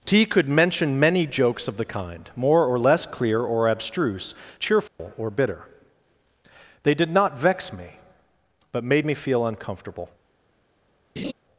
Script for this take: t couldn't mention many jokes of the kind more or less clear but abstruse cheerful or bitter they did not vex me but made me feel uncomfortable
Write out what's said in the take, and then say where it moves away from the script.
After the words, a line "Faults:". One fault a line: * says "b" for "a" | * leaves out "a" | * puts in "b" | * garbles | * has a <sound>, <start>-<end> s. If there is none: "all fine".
t could mention many jokes of the kind more or less clear or abstruse cheerful or bitter they did not vex me but made me feel uncomfortable
Faults:
* says "could" for "couldn't"
* says "or" for "but"
* has a dropout, 4.9-5.0 s
* has a laugh, 11.2-11.3 s